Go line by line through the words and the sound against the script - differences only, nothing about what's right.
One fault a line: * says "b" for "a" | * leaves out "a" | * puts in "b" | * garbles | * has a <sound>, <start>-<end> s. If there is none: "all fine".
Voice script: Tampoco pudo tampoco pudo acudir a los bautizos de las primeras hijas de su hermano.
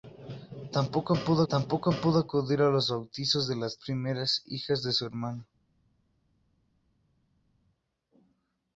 all fine